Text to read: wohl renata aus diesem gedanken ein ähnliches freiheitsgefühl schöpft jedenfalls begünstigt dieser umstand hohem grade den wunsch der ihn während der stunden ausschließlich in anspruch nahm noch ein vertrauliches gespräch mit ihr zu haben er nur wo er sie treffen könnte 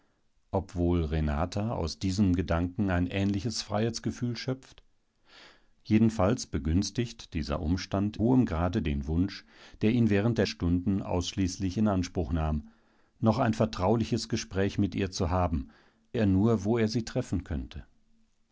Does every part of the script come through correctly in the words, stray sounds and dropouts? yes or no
yes